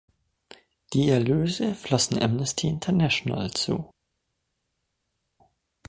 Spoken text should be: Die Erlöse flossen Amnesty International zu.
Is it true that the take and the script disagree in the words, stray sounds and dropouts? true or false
false